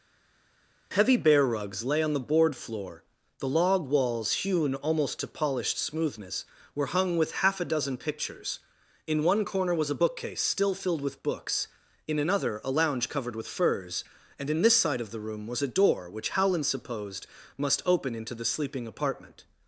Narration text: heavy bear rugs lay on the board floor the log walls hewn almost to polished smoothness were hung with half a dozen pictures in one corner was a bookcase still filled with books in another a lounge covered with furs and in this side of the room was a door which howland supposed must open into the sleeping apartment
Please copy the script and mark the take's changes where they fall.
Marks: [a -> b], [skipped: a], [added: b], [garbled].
heavy bear rugs lay on the board floor the log walls hewn almost to polished smoothness were hung with half a dozen pictures in one corner was a bookcase still filled with books in another a lounge covered with furs and in this side of the room was a door which howland supposed must open into the sleeping apartment